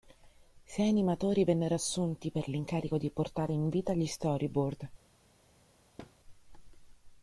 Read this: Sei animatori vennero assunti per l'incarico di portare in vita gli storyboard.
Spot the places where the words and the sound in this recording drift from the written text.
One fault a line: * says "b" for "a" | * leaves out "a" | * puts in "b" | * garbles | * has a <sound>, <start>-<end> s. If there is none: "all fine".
* has a thud, 6.0-6.2 s